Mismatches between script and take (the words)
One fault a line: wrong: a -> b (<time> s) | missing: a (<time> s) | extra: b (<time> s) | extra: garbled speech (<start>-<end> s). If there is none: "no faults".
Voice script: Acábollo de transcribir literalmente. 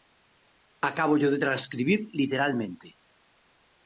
no faults